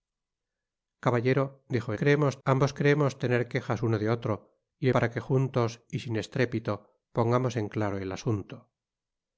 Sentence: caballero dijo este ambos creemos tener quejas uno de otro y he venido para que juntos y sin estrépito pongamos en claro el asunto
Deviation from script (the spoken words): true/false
true